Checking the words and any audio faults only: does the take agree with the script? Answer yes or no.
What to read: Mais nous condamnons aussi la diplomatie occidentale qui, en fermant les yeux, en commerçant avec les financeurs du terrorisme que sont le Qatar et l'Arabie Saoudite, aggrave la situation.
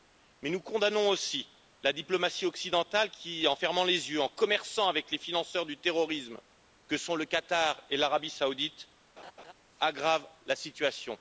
no